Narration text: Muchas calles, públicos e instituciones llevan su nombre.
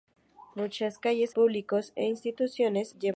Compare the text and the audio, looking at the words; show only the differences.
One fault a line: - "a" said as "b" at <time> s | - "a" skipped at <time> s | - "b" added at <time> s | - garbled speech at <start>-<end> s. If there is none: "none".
none